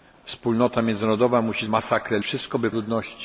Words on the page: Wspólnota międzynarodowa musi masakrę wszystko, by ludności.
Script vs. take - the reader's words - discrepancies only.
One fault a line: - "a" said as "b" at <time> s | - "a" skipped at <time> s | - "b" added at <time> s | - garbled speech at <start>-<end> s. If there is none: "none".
none